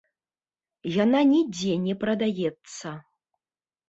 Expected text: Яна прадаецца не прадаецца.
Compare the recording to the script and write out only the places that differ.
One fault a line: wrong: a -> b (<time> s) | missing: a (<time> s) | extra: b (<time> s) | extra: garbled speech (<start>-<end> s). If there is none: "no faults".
wrong: прадаецца -> нідзе (1.3 s)